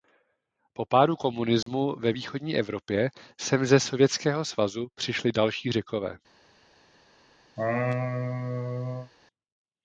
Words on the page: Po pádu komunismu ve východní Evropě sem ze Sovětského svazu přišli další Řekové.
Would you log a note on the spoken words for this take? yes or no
no